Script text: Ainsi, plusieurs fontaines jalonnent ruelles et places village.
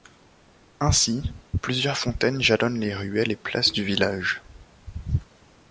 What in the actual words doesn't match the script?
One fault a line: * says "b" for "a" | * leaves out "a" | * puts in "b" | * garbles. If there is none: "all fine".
* puts in "les"
* puts in "du"